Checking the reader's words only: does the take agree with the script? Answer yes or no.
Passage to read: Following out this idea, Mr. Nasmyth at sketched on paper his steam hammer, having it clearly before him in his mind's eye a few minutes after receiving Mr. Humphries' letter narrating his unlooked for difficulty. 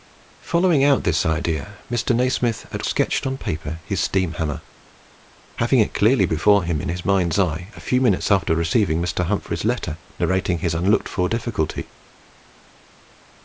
yes